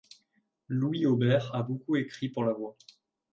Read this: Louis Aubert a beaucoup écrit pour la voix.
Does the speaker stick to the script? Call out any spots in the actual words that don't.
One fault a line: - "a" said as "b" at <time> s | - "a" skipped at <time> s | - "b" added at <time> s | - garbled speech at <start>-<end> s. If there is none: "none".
none